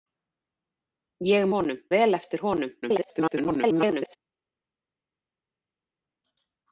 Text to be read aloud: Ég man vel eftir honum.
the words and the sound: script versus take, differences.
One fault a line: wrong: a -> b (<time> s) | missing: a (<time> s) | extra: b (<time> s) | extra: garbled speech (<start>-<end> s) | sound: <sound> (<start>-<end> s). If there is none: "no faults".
wrong: man -> honum (1.6 s)
extra: garbled speech (2.8-4.2 s)